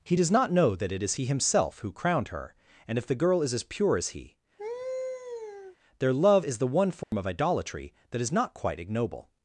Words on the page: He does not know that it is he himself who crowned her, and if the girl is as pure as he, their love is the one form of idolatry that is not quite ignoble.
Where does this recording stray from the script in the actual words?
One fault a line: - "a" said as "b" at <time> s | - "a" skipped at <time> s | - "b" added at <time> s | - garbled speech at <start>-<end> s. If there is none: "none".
none